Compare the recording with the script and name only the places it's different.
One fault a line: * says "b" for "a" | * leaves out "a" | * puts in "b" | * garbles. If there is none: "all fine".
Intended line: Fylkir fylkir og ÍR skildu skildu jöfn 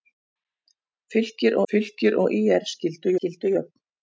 all fine